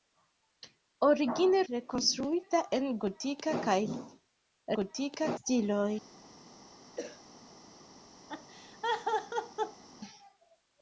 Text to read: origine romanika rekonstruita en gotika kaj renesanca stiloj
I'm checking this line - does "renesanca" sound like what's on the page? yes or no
no